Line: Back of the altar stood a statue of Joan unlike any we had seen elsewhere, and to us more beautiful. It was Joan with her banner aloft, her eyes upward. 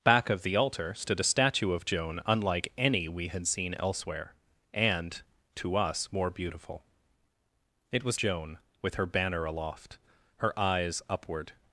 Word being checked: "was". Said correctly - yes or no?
yes